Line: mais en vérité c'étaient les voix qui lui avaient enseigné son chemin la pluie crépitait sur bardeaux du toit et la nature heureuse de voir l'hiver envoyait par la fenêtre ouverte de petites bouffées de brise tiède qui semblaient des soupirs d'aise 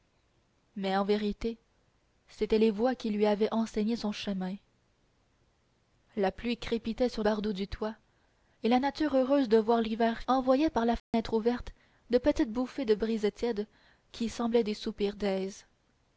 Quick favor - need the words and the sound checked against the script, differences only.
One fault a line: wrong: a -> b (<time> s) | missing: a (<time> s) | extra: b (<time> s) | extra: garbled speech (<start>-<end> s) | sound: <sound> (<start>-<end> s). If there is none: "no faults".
sound: dropout (11.0-11.1 s)